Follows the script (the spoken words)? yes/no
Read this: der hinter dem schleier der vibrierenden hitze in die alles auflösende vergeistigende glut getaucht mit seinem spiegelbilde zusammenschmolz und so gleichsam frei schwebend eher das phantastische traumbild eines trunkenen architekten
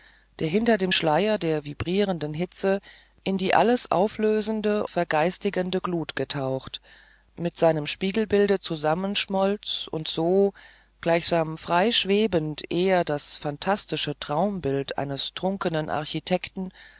yes